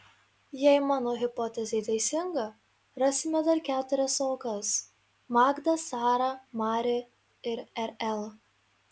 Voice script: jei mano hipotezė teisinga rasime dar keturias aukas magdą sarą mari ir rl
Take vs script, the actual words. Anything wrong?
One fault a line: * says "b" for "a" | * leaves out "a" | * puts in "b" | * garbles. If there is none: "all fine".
all fine